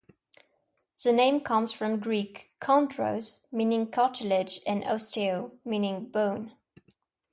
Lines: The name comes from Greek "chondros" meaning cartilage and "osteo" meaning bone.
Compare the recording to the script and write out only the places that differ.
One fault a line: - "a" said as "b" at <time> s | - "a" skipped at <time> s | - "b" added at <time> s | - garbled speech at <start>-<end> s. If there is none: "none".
none